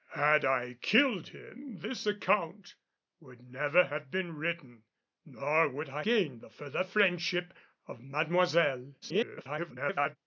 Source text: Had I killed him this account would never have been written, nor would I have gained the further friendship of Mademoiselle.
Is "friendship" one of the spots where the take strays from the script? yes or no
no